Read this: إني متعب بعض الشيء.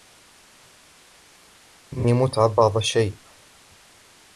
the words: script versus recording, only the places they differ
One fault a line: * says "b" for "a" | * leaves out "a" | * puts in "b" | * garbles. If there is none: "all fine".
all fine